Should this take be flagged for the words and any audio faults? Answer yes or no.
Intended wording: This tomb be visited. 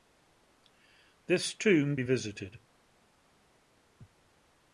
no